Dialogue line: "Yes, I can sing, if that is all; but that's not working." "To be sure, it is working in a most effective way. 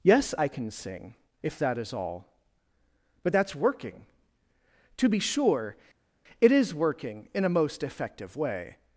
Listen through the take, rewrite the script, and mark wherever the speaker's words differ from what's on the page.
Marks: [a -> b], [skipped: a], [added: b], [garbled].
"Yes, I can sing, if that is all; but that's [skipped: not] working." "To be sure, it is working in a most effective way.